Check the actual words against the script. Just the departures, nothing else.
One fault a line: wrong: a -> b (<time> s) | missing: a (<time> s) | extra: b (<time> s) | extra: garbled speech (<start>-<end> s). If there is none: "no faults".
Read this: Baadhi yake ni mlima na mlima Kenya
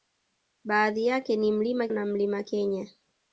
no faults